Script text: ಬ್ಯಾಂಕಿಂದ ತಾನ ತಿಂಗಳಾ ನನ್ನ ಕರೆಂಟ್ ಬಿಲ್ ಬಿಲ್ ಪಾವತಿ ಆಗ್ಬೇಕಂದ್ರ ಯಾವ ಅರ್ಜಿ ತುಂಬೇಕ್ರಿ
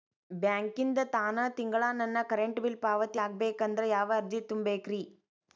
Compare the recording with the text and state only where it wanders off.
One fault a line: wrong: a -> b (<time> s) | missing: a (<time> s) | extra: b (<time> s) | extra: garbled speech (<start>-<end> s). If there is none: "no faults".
missing: ಬಿಲ್ (2.8 s)